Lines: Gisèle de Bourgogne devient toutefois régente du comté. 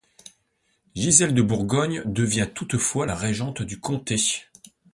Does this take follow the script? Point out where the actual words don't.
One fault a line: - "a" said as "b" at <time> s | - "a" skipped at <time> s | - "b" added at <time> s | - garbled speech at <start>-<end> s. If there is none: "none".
none